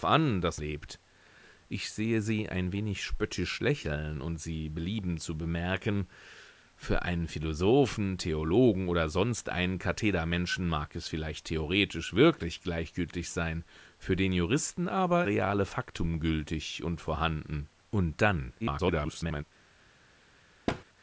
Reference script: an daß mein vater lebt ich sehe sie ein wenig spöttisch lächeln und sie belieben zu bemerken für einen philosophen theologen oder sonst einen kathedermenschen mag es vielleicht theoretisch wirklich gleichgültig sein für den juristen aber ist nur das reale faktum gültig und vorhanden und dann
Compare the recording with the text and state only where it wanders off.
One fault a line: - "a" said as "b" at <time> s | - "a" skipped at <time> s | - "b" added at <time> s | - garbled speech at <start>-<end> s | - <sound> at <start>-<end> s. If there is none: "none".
- "mein vater" skipped at 0.6 s
- "ist nur das" skipped at 15.3 s
- garbled speech at 18.6-19.4 s
- thud at 20.7-20.8 s